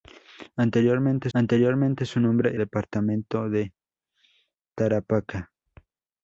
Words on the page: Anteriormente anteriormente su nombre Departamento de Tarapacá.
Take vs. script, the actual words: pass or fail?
pass